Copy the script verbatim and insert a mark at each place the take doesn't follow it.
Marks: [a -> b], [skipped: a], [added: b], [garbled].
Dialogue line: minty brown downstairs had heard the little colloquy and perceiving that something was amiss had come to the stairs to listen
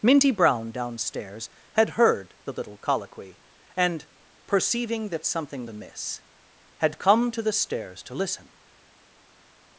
minty brown downstairs had heard the little colloquy and perceiving that something [skipped: was] amiss had come to the stairs to listen